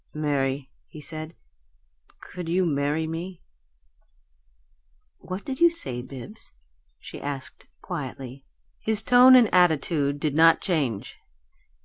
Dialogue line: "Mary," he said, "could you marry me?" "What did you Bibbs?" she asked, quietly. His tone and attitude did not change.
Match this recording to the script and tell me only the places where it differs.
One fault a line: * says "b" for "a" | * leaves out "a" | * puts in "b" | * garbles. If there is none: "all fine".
* puts in "say"